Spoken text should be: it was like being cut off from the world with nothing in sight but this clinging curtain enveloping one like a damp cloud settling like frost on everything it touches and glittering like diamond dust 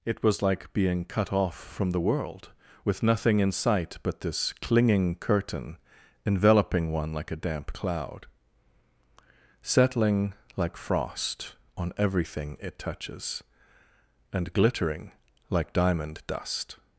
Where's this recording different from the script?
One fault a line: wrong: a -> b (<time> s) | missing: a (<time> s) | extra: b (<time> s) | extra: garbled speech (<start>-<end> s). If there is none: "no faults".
no faults